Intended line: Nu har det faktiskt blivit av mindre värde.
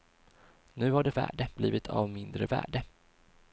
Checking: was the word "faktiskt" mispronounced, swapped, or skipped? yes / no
yes